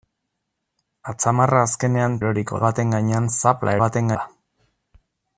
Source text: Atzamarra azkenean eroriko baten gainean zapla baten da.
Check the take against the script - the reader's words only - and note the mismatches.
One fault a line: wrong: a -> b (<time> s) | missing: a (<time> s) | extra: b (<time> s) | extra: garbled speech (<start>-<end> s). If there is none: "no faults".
no faults